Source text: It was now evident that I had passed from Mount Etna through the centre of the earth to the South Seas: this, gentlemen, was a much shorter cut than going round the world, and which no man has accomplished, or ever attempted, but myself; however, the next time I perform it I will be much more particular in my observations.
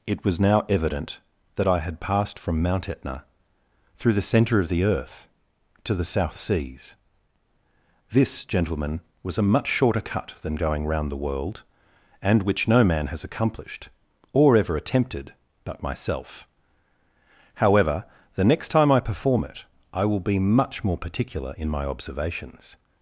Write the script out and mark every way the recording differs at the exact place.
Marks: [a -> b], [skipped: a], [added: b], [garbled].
It was now evident that I had passed from Mount Etna through the centre of the earth to the South Seas: this, gentlemen, was a much shorter cut than going round the world, and which no man has accomplished, or ever attempted, but myself; however, the next time I perform it I will be much more particular in my observations.